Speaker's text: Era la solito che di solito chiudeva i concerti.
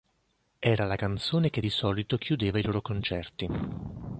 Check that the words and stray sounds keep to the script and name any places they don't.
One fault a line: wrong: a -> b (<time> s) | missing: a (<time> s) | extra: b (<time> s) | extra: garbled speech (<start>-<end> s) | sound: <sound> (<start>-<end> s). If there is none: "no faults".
wrong: solito -> canzone (0.9 s)
extra: loro (2.6 s)